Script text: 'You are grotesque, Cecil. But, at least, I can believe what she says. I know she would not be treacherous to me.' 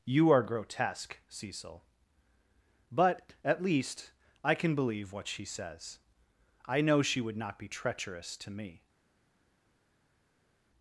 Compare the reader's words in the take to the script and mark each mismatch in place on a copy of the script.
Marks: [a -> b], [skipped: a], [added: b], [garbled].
'You are grotesque, Cecil. But, at least, I can believe what she says. I know she would not be treacherous to me.'